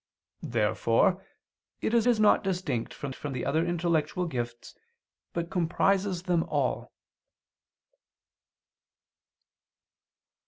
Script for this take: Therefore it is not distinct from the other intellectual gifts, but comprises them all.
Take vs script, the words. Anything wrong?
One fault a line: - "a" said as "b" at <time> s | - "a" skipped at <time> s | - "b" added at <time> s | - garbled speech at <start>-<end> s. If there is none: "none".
- "is" added at 2.1 s
- "from" added at 3.1 s